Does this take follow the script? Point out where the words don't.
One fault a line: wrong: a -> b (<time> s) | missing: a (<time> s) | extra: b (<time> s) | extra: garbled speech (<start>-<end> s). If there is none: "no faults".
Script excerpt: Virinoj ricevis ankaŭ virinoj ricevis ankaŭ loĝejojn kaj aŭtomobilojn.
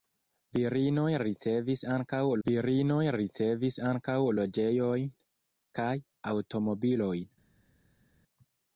no faults